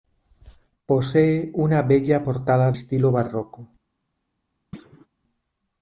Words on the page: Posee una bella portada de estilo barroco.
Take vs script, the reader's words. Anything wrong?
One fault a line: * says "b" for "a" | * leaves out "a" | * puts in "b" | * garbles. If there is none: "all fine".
* leaves out "de"